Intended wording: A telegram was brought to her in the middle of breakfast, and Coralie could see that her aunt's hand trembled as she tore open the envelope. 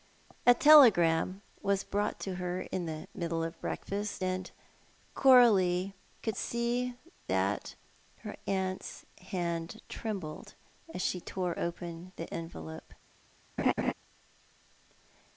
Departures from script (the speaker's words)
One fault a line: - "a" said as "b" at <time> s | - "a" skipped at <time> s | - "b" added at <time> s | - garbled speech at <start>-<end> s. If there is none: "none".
none